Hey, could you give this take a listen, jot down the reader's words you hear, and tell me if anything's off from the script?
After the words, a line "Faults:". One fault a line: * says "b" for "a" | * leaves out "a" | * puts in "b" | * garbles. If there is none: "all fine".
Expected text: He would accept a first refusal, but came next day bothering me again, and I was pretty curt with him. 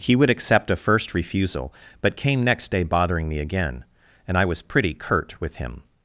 He would accept a first refusal, but came next day bothering me again, and I was pretty curt with him.
Faults:
all fine